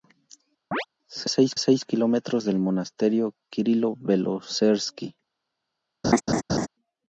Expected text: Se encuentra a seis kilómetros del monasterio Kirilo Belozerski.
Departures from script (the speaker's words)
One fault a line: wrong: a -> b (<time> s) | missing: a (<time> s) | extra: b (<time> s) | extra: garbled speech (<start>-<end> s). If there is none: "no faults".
wrong: encuentra -> seis (1.3 s)